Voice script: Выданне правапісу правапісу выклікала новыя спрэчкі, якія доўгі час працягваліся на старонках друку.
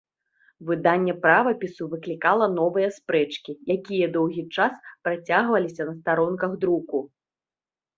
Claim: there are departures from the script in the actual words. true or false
true